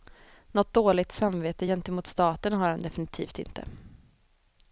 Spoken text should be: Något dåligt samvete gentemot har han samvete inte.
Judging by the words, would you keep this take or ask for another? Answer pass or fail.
fail